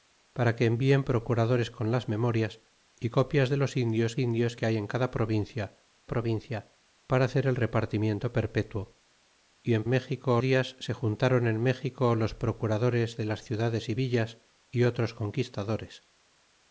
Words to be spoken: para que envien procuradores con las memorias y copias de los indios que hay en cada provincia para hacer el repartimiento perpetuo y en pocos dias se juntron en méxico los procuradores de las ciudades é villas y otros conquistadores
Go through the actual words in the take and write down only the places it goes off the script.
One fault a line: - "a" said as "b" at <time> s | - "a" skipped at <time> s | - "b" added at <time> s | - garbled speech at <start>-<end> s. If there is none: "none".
- "indios" added at 4.2 s
- "provincia" added at 6.1 s
- "pocos" said as "méxico" at 9.9 s